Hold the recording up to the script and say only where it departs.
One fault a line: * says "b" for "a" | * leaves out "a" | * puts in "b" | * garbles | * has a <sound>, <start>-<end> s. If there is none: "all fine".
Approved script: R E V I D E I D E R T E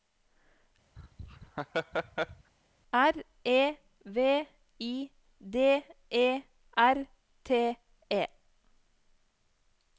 * has a laugh, 1.0-2.5 s
* leaves out "I D E"